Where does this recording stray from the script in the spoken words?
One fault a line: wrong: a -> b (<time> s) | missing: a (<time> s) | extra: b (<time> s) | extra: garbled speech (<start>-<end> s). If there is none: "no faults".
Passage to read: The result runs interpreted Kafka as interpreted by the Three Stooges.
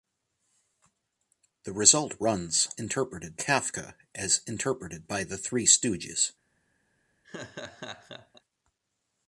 no faults